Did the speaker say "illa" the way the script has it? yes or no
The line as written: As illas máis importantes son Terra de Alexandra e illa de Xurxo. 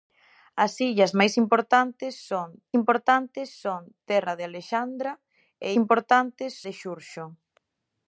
no